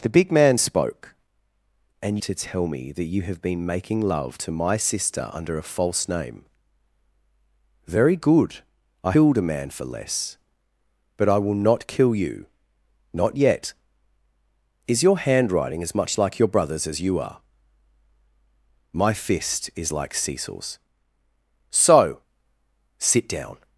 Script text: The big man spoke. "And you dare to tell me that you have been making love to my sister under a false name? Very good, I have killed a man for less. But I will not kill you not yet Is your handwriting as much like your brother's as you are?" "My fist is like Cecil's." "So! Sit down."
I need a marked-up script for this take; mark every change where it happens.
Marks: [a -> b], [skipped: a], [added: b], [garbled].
The big man spoke. "And [skipped: you dare] to tell me that you have been making love to my sister under a false name? Very good, I [skipped: have] killed a man for less. But I will not kill you not yet Is your handwriting as much like your brother's as you are?" "My fist is like Cecil's." "So! Sit down."